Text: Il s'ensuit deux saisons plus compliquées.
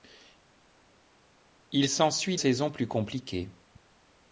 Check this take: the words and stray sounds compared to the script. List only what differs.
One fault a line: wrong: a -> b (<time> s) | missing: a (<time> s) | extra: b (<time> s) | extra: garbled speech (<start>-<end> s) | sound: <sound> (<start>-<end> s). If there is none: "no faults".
missing: deux (2.4 s)